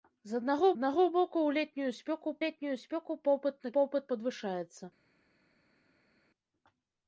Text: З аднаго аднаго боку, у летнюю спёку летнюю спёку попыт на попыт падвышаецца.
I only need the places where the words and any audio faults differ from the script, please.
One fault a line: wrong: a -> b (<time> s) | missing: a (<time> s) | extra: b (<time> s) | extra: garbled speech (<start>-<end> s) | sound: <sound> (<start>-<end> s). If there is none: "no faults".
no faults